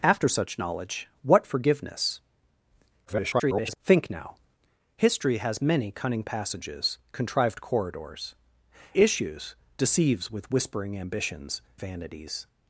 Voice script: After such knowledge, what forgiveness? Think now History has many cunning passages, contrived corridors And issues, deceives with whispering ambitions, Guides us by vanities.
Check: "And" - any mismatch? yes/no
yes